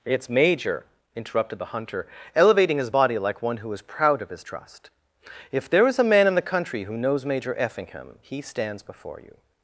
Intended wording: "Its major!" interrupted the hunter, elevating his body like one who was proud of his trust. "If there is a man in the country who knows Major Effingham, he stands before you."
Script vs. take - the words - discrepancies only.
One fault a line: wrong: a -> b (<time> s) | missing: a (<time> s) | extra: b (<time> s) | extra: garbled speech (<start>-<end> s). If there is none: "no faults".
wrong: was -> is (3.7 s)